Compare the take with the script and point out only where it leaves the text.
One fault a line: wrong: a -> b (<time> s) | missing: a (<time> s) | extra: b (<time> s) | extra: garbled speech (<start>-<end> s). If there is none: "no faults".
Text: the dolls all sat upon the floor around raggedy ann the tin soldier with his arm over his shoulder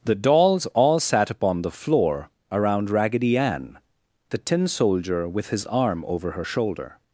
wrong: his -> her (6.3 s)